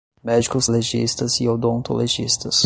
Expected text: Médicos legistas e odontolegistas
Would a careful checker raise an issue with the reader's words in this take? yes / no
no